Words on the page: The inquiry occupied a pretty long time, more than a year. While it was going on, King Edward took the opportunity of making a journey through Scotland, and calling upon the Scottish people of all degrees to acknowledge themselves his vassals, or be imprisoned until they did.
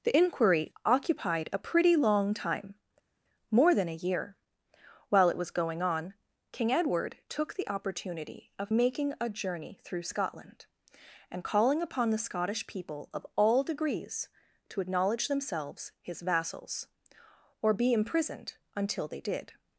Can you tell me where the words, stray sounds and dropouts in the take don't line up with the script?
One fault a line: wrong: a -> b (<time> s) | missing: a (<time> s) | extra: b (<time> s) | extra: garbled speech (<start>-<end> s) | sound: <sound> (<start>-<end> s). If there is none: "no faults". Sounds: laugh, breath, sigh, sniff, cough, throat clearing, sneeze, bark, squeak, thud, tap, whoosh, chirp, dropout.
no faults